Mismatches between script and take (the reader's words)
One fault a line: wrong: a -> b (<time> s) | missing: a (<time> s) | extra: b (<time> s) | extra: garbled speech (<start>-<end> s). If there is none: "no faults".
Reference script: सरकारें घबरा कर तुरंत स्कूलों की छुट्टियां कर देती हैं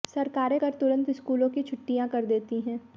missing: घबरा (0.6 s)